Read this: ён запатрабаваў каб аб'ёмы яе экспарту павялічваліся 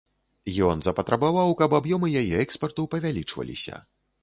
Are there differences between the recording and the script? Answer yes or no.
no